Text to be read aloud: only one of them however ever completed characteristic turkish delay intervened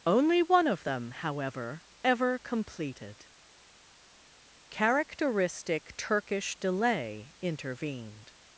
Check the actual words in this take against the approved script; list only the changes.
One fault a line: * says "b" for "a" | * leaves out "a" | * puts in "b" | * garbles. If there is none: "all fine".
all fine